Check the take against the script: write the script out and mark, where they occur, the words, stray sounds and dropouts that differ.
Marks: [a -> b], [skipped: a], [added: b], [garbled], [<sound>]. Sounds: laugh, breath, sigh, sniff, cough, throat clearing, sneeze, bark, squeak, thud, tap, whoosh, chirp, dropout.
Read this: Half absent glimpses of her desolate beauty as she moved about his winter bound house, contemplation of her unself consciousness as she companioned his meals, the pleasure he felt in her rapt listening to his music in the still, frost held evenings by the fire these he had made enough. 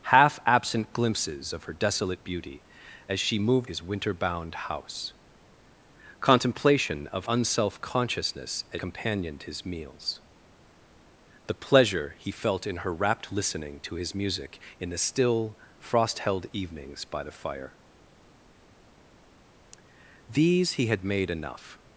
Half absent glimpses of her desolate beauty as she moved [skipped: about] his winter bound house, contemplation of [skipped: her] unself consciousness as [skipped: she] companioned his meals, the pleasure he felt in her rapt listening to his music in the still, frost held evenings by the fire these he had made enough.